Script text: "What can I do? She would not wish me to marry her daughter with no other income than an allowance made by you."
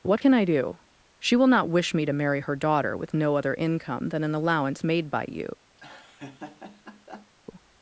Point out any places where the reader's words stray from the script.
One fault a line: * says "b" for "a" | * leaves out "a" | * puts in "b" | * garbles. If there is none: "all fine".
* says "will" for "would"